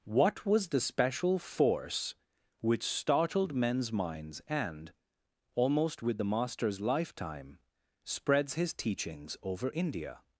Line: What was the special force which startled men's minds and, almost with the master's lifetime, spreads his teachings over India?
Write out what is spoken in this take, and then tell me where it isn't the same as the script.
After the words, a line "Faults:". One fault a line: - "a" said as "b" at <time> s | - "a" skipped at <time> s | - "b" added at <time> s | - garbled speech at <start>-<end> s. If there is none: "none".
What was the special force which startled men's minds and, almost with the master's lifetime, spreads his teachings over India?
Faults:
none